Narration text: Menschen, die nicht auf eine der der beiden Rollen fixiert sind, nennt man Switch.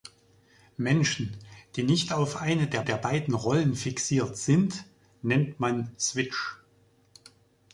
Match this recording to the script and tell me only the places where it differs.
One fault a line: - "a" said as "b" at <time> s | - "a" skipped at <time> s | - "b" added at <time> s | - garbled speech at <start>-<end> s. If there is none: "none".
none